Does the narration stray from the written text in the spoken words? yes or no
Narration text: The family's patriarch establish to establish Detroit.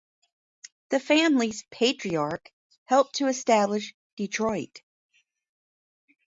yes